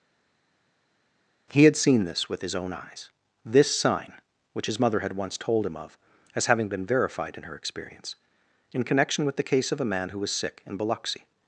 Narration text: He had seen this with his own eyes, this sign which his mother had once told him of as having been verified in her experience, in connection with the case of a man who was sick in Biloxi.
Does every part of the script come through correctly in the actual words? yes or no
yes